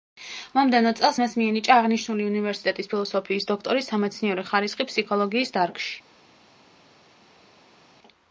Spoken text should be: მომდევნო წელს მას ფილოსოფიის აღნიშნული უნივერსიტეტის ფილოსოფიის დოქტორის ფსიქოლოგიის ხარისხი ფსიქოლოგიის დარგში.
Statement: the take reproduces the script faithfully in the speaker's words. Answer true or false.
false